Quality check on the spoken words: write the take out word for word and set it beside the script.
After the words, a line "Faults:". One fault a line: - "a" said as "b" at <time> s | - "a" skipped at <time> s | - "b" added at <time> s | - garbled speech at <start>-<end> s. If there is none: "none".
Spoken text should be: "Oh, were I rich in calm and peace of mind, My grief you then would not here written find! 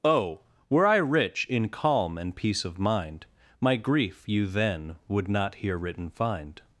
"Oh, were I rich in calm and peace of mind, My grief you then would not here written find!
Faults:
none